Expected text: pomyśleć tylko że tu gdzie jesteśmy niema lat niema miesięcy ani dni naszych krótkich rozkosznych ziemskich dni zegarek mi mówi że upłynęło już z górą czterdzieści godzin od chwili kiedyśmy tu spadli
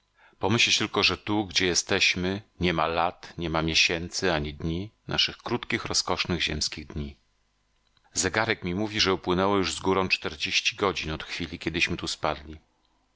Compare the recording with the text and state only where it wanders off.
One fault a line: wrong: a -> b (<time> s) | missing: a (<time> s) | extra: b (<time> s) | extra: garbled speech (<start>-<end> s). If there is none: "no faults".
no faults